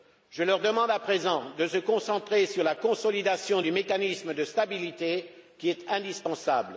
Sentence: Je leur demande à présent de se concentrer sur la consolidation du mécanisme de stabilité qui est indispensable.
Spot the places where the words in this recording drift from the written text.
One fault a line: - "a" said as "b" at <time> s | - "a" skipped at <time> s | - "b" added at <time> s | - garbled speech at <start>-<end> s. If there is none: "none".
none